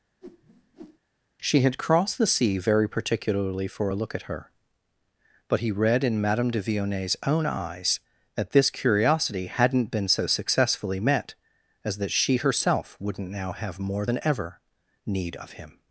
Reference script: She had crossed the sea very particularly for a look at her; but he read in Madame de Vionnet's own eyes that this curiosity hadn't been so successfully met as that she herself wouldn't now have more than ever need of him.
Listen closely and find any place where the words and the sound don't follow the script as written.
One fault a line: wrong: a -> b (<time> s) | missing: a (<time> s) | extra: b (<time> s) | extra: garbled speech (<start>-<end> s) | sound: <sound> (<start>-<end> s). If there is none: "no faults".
sound: whoosh (0.2-1.0 s)